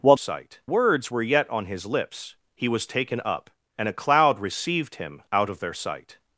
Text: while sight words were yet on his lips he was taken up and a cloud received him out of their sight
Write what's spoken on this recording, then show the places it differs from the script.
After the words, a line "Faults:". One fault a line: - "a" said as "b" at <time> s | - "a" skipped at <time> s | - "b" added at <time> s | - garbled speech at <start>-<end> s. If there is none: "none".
while sight words were yet on his lips he was taken up and a cloud received him out of their sight
Faults:
none